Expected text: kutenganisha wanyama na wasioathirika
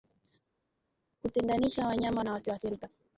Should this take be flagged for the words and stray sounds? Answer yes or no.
no